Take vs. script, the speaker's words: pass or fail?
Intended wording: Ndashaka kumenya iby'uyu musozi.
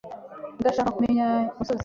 fail